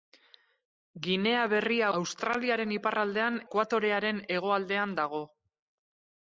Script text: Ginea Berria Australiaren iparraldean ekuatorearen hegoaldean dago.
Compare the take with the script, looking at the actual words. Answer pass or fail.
pass